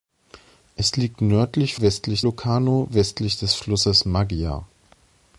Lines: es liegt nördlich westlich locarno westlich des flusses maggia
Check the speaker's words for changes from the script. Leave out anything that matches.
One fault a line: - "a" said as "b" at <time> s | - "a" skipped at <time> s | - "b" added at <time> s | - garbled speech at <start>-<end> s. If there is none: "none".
none